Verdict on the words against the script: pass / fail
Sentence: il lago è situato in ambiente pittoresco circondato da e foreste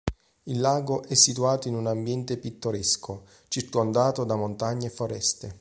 fail